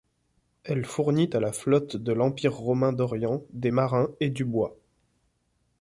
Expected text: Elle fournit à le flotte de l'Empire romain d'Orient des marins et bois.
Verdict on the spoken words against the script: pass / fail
fail